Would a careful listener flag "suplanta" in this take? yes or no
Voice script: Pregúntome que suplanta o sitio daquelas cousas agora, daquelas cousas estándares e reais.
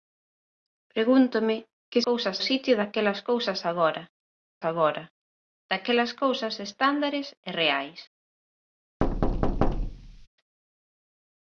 yes